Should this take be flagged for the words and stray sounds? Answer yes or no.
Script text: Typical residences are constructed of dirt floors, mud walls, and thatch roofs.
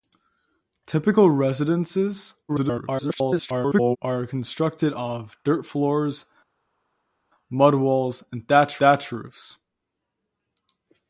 yes